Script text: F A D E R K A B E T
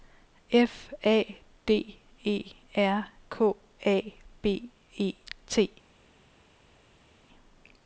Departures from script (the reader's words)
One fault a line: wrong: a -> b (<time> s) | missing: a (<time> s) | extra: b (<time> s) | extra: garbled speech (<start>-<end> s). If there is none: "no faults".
no faults